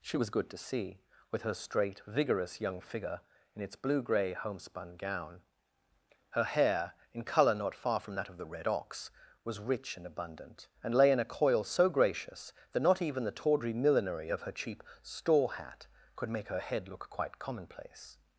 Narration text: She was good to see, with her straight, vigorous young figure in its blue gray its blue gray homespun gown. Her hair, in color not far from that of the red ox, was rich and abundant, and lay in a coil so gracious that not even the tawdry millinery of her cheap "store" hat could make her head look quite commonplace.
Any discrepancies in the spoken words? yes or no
yes